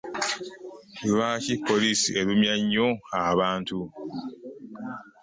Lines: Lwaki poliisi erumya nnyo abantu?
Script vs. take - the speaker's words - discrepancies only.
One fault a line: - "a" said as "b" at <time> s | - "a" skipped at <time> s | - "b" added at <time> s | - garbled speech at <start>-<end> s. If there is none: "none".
none